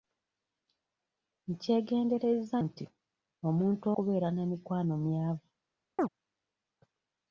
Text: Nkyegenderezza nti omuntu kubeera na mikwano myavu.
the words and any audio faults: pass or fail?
fail